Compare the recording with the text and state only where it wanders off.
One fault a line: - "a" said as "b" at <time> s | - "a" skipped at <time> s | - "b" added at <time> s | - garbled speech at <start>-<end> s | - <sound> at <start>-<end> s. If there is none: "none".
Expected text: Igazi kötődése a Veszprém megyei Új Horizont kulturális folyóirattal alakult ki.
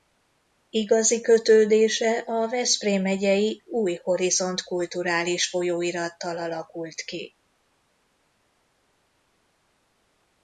none